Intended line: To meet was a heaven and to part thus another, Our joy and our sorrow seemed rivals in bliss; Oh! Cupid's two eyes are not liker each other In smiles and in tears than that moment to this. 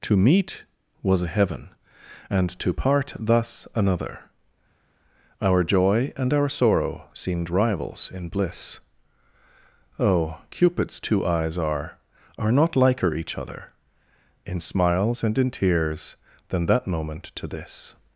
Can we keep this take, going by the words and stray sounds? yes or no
no